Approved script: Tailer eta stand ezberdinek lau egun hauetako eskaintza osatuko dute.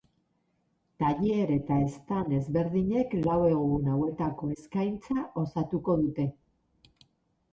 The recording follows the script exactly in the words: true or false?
true